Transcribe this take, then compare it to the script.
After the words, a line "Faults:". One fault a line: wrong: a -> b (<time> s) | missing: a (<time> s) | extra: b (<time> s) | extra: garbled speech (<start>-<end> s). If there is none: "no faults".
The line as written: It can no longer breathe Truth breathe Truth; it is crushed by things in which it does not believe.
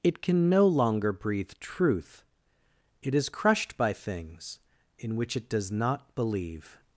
It can no longer breathe Truth; it is crushed by things in which it does not believe.
Faults:
missing: breathe Truth (2.2 s)